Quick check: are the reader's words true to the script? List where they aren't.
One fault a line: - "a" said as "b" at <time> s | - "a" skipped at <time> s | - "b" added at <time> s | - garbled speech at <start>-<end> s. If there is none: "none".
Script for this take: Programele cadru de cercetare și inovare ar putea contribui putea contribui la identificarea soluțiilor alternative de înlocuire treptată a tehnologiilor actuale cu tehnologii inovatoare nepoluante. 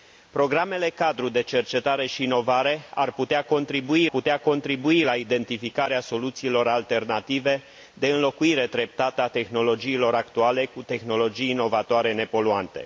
none